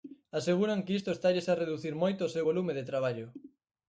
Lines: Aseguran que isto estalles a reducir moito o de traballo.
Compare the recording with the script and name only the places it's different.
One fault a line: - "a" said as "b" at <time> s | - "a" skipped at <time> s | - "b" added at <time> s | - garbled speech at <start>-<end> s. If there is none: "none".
- "seu volume" added at 2.3 s